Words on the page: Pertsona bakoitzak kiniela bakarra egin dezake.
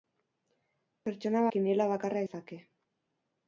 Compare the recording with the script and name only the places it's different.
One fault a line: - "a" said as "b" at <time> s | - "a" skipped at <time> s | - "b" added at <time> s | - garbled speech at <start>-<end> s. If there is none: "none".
- "bakoitzak" skipped at 1.4 s
- "egin" skipped at 2.3 s